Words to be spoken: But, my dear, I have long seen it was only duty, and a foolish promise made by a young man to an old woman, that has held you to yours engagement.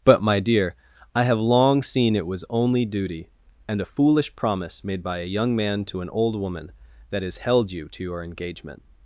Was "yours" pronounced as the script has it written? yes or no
no